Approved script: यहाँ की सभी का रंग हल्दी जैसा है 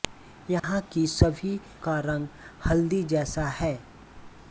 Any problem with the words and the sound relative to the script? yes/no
yes